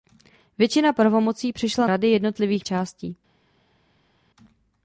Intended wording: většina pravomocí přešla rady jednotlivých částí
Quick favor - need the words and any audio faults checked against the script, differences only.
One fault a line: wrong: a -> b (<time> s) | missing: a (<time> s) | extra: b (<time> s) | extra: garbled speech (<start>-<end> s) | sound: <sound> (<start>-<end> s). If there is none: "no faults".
no faults